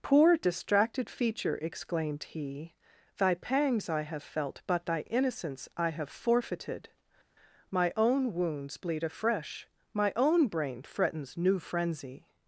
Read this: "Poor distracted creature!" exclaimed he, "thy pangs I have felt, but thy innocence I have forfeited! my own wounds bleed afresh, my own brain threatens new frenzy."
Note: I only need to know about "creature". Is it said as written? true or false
false